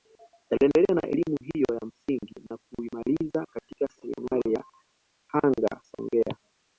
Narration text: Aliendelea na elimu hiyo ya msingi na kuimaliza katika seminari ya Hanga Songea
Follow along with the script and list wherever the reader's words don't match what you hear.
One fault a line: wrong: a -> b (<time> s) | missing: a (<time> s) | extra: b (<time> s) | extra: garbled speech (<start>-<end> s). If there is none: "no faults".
no faults